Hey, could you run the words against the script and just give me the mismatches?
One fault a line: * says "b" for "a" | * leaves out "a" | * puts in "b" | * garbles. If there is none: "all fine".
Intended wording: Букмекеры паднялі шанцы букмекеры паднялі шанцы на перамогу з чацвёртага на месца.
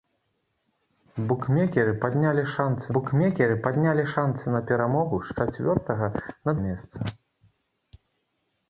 all fine